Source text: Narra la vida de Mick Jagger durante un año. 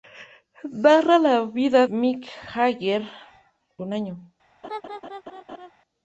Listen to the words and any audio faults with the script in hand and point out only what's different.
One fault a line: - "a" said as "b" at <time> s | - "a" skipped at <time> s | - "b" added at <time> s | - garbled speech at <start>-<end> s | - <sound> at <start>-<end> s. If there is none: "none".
- "de" skipped at 1.9 s
- "durante" skipped at 3.0 s
- laugh at 4.6-5.7 s